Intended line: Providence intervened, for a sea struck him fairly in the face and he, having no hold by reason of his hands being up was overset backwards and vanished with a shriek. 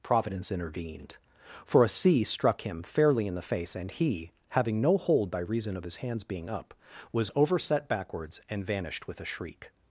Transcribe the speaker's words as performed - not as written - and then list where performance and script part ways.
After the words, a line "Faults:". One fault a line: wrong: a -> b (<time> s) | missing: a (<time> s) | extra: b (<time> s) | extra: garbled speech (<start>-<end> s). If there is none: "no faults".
Providence intervened, for a sea struck him fairly in the face and he, having no hold by reason of his hands being up was overset backwards and vanished with a shriek.
Faults:
no faults